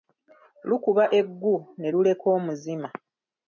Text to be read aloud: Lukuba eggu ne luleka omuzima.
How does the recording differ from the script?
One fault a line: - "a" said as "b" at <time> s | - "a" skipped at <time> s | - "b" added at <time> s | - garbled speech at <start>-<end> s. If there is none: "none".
none